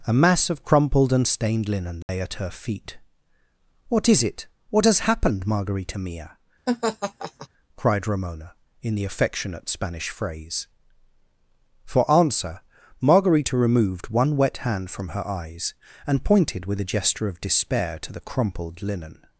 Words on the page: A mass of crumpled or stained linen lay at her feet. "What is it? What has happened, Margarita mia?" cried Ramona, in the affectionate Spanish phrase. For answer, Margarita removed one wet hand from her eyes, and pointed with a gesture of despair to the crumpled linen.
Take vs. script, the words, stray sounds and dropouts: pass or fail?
fail